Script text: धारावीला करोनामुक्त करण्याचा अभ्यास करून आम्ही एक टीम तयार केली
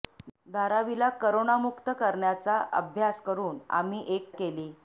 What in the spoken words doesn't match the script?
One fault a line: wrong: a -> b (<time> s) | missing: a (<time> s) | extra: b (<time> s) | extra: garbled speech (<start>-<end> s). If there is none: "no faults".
missing: टीम तयार (4.3 s)